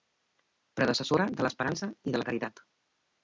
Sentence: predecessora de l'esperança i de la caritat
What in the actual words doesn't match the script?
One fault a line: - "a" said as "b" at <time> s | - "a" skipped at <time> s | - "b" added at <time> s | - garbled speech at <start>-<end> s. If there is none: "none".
none